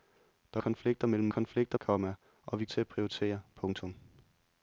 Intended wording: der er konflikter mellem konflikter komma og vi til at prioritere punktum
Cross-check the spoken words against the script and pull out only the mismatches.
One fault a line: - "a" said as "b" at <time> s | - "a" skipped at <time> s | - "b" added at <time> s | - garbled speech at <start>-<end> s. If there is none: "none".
none